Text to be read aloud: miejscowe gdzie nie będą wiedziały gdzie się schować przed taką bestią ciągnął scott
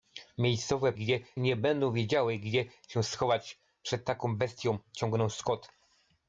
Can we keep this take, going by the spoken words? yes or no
yes